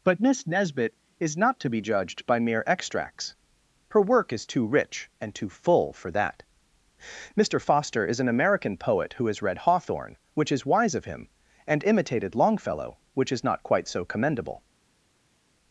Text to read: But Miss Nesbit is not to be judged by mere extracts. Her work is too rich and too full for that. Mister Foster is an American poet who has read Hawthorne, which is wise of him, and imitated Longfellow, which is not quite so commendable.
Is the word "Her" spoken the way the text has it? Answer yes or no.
yes